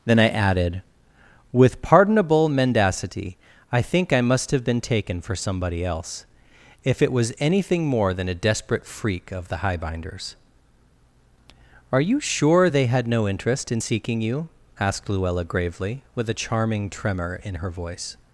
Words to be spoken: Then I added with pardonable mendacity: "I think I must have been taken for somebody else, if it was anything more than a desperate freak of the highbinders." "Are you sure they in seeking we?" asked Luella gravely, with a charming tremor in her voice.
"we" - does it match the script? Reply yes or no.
no